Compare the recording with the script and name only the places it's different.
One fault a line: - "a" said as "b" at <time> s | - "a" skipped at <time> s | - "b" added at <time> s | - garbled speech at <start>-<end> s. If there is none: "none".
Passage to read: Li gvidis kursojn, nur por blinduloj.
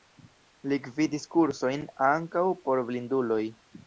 - "nur" said as "ankaŭ" at 2.1 s